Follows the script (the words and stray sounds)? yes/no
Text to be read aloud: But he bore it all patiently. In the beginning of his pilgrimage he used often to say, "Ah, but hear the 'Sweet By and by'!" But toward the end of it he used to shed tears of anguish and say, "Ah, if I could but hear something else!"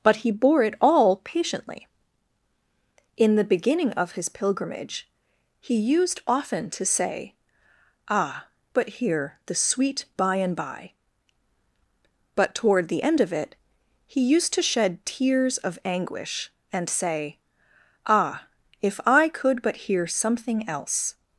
yes